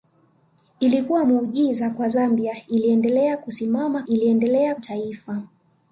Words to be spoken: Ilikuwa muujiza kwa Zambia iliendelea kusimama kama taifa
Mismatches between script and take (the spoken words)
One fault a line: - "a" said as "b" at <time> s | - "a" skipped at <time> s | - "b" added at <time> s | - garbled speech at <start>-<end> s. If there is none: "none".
- "kama" said as "iliendelea" at 4.0 s